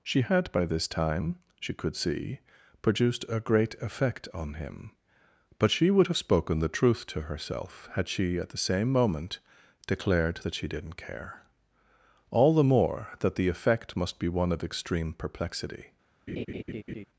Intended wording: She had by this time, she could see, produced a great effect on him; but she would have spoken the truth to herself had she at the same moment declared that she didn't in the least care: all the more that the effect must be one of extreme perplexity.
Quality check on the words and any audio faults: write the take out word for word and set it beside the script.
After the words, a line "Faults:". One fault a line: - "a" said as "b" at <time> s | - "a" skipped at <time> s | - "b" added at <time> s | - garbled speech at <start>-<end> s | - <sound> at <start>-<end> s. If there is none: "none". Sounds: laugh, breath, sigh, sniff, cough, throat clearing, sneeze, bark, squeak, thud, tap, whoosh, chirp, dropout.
She had by this time, she could see, produced a great effect on him; but she would have spoken the truth to herself had she at the same moment declared that she didn't care: all the more that the effect must be one of extreme perplexity.
Faults:
- "in the least" skipped at 11.0 s
- laugh at 16.3-17.0 s